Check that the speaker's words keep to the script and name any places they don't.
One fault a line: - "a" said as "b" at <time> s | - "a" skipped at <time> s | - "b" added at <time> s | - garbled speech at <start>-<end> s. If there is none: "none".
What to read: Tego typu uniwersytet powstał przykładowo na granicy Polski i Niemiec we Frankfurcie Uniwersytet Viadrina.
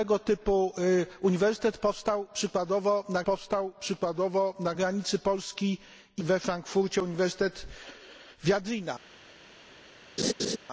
- "powstał przykładowo na" added at 3.2 s
- "Niemiec" skipped at 6.2 s